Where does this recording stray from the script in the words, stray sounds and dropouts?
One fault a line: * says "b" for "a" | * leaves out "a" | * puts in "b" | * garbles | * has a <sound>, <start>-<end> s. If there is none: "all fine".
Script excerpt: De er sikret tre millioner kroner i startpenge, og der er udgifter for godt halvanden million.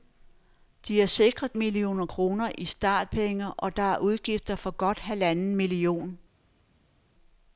* leaves out "tre"